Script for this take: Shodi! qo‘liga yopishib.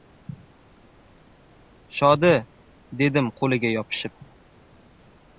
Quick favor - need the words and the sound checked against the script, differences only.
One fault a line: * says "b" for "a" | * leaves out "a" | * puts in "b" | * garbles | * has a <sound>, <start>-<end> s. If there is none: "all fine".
* puts in "dedim"